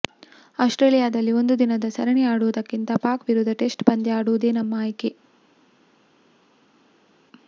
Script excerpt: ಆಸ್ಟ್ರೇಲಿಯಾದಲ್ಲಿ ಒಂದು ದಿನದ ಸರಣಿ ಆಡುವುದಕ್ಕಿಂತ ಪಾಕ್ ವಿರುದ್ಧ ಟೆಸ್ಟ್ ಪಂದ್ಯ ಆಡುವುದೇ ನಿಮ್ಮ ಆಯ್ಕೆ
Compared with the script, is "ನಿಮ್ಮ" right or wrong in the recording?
wrong